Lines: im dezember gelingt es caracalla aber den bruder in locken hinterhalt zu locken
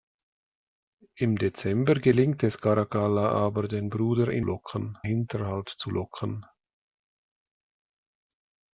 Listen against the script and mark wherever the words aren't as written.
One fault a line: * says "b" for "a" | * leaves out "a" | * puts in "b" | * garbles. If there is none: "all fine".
all fine